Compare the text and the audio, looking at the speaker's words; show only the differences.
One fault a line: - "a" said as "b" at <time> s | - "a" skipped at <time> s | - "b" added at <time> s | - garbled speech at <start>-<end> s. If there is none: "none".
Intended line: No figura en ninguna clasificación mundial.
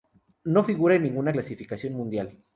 none